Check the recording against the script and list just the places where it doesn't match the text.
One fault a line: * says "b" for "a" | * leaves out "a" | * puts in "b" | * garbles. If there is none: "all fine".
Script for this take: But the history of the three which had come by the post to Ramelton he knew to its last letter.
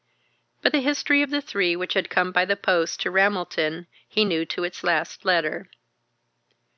all fine